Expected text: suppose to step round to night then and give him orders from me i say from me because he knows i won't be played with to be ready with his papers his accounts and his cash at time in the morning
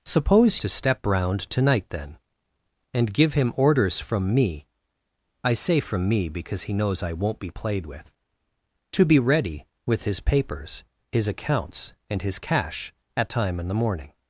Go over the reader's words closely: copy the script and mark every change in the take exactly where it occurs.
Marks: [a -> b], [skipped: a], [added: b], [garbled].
suppose to step round to night then and give him orders from me i say from me because he knows i won't be played with to be ready with his papers his accounts and his cash at time in the morning